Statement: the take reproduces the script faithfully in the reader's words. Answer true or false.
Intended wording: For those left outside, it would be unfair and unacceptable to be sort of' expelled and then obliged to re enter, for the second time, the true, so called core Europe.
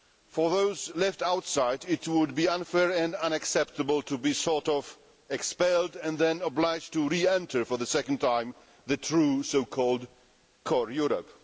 true